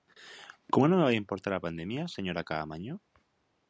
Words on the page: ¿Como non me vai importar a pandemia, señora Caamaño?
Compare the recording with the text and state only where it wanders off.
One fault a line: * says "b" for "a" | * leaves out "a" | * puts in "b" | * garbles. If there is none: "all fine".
all fine